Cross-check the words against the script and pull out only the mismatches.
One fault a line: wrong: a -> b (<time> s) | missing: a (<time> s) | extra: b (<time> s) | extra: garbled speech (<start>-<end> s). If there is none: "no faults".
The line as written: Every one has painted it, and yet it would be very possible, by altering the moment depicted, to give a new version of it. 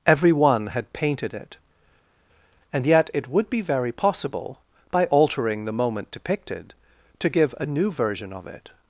wrong: has -> had (0.7 s)